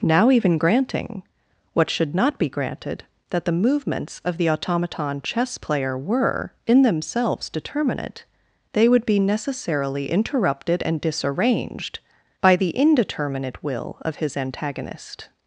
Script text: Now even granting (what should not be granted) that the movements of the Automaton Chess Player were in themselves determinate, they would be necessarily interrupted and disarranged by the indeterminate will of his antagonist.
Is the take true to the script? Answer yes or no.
yes